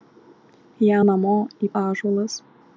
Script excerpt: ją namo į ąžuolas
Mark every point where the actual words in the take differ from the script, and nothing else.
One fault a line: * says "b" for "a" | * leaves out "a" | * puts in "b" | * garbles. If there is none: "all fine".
all fine